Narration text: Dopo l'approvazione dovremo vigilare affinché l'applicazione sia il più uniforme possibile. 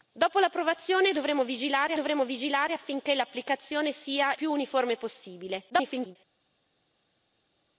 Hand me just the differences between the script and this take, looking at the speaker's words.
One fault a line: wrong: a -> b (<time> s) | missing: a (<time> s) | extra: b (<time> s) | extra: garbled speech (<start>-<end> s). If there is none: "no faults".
extra: dovremo vigilare (1.9 s)
missing: il (4.3 s)
extra: garbled speech (5.7-6.2 s)